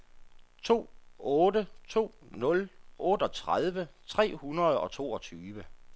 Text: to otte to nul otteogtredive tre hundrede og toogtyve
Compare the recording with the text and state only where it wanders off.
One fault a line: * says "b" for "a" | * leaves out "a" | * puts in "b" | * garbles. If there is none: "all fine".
all fine